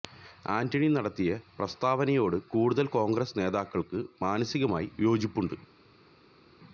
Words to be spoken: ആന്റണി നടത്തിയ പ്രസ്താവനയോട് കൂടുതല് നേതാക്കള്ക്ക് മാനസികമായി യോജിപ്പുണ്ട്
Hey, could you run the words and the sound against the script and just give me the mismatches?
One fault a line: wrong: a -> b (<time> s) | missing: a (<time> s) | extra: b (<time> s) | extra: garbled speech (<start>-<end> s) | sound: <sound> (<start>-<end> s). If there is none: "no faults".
extra: കോണ്ഗ്രസ് (2.9 s)